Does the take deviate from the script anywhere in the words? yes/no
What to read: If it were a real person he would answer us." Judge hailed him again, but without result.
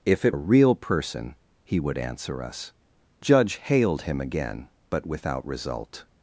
yes